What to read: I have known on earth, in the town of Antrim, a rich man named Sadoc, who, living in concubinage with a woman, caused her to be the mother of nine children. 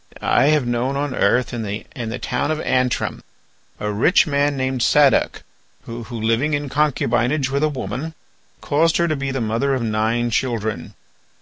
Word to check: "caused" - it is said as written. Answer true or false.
true